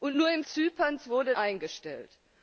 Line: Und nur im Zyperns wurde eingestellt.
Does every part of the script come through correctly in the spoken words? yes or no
yes